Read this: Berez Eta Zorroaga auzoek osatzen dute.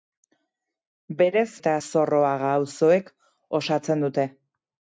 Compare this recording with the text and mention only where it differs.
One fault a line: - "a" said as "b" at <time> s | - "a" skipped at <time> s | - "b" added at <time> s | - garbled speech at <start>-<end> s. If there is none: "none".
none